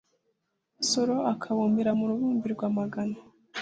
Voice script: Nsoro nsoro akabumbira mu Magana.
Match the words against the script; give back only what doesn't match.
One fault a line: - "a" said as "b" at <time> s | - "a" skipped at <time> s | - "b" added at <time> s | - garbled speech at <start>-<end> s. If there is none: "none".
- "nsoro" skipped at 1.1 s
- "Rubumbirirwa" added at 2.1 s